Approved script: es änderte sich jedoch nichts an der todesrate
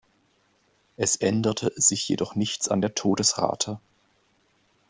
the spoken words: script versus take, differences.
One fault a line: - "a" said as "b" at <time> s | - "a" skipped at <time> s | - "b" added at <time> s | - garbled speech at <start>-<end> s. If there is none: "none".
none